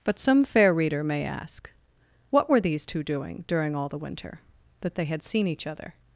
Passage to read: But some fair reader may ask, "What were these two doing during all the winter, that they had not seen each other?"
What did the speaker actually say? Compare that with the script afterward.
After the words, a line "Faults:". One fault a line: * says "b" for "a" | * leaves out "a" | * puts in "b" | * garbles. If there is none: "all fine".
But some fair reader may ask, "What were these two doing during all the winter, that they had seen each other?"
Faults:
* leaves out "not"